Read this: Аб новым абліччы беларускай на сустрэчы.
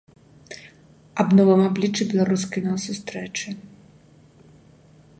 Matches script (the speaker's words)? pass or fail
pass